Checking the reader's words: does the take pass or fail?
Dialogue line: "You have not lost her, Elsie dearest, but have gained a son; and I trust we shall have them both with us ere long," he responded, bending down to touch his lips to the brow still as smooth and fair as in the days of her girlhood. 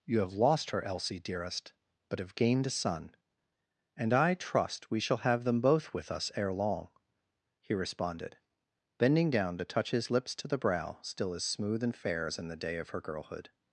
fail